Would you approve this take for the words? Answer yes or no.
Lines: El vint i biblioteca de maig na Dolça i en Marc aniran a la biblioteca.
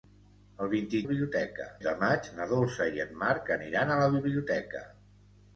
yes